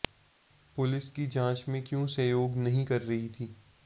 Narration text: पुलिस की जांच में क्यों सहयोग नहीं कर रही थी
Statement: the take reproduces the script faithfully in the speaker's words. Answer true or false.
true